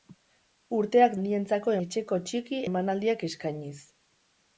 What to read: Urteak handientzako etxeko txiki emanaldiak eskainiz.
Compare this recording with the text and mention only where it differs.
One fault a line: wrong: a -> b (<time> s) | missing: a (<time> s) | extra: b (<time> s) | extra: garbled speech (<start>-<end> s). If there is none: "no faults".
no faults